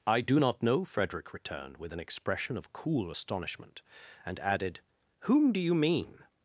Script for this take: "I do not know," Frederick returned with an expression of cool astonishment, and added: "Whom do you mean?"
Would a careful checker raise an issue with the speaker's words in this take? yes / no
no